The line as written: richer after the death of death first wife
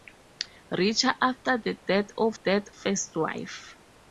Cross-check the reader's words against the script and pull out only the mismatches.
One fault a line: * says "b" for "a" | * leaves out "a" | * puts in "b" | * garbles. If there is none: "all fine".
all fine